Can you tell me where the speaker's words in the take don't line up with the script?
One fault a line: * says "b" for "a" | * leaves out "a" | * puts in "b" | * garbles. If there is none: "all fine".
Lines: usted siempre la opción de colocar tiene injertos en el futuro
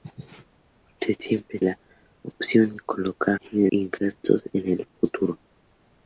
all fine